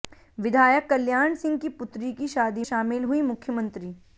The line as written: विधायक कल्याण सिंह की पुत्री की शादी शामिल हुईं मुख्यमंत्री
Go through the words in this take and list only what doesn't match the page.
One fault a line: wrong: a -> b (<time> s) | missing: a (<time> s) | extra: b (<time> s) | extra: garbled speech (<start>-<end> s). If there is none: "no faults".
no faults